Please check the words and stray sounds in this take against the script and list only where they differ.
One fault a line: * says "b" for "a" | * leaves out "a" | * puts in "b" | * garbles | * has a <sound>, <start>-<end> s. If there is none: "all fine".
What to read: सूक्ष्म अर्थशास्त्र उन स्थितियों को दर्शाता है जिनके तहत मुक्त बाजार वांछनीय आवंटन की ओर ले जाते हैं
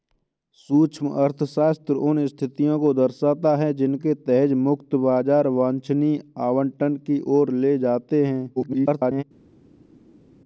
* garbles